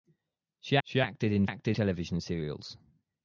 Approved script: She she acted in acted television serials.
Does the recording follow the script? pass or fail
pass